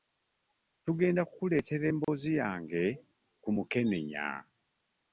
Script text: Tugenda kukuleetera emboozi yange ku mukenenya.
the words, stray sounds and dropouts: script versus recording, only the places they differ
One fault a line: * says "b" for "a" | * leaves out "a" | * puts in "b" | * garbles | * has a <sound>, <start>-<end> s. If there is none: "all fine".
* has a dropout, 2.0-2.1 s